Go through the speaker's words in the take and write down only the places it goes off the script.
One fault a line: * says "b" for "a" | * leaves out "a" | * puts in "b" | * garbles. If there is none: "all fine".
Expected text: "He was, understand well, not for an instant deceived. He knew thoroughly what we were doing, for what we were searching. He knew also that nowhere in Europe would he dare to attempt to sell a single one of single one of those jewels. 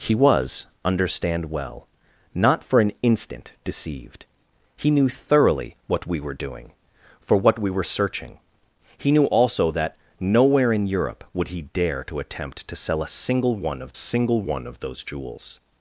all fine